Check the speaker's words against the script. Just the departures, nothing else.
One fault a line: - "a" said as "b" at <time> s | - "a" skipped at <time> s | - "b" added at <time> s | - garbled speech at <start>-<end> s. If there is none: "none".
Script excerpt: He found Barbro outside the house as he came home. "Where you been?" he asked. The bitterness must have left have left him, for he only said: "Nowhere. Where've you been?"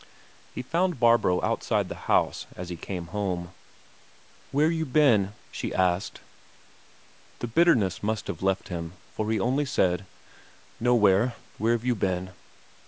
- "he" said as "she" at 5.5 s
- "have left" skipped at 8.7 s